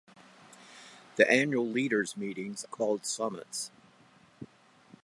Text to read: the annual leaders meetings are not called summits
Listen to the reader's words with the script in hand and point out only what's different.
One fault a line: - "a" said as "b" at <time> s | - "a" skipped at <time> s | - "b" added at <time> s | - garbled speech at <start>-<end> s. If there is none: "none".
- "are not" skipped at 2.6 s